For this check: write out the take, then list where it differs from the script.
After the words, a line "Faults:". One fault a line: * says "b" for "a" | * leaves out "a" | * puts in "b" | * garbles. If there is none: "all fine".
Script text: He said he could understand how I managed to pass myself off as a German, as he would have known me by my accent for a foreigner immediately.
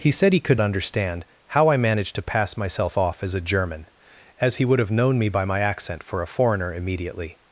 He said he could understand how I managed to pass myself off as a German, as he would have known me by my accent for a foreigner immediately.
Faults:
all fine